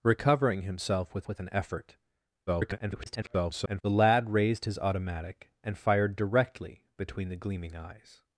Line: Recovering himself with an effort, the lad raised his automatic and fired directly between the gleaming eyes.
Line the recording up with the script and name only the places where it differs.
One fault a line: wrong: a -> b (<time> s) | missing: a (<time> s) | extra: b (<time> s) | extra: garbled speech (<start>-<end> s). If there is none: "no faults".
extra: with (1.3 s)
extra: garbled speech (2.5-3.8 s)